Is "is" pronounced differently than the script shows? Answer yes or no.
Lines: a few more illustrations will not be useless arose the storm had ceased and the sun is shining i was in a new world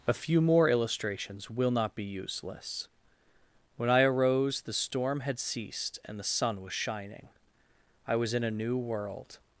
yes